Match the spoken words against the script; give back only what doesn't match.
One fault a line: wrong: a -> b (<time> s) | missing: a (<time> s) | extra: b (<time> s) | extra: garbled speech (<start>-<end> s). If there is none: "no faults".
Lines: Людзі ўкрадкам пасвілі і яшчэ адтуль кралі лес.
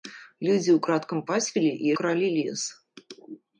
missing: яшчэ адтуль (1.9 s)